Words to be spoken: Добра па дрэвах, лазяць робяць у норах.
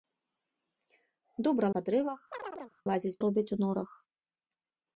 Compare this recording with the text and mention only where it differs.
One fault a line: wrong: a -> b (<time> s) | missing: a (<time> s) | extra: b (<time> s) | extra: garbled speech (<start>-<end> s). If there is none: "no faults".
no faults